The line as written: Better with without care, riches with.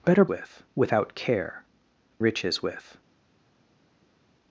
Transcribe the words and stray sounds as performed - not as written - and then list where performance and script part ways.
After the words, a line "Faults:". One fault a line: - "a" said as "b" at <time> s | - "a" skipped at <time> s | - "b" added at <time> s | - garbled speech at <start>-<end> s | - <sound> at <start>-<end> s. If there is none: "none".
Better with without care, riches with.
Faults:
none